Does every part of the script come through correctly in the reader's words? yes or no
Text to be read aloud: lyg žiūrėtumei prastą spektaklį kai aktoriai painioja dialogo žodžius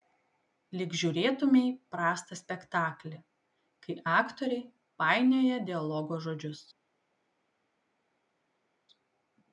yes